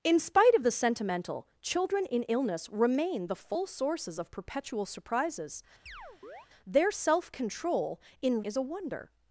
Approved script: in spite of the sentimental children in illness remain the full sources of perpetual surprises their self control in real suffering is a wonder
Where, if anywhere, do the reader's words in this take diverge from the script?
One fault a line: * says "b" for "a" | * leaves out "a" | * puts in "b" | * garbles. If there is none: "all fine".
* leaves out "real suffering"